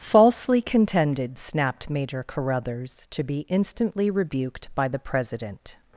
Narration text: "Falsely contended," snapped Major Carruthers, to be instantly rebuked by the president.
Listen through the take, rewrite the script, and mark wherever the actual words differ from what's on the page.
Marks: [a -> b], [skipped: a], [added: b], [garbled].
"Falsely contended," snapped Major Carruthers, to be instantly rebuked by the president.